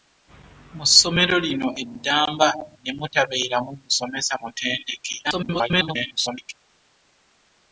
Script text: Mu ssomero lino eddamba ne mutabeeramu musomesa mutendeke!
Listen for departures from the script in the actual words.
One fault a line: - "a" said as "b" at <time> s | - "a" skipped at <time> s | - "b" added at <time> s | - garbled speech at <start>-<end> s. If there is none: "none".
- garbled speech at 5.2-6.5 s